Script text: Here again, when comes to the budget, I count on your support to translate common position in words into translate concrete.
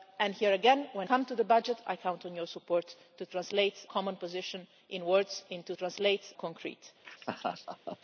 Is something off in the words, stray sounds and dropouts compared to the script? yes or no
yes